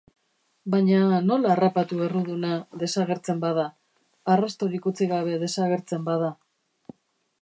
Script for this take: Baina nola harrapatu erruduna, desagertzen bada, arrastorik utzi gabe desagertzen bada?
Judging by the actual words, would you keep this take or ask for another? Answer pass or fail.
pass